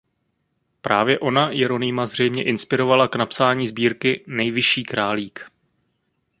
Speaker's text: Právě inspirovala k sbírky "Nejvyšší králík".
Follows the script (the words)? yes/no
no